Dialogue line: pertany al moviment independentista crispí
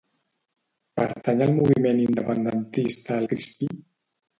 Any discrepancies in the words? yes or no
no